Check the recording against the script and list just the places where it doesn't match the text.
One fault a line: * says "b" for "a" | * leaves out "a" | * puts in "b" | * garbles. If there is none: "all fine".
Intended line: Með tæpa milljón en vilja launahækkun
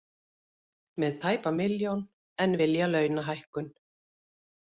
all fine